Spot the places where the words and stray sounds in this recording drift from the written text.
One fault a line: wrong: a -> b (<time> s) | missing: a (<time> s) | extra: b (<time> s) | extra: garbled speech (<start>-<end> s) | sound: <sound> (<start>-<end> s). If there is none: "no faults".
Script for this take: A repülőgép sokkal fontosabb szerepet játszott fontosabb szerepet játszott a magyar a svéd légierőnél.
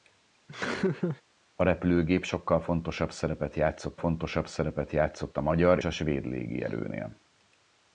sound: laugh (0.5-1.2 s)